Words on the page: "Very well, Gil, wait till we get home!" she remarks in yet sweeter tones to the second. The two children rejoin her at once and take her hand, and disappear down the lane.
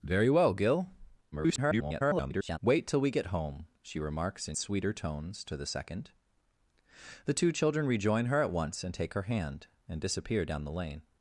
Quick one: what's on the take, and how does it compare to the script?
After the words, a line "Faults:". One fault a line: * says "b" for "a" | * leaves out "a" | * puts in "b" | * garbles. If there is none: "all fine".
"Very well, Gil, [garbled] wait till we get home!" she remarks in sweeter tones to the second. The two children rejoin her at once and take her hand, and disappear down the lane.
Faults:
* garbles
* leaves out "yet"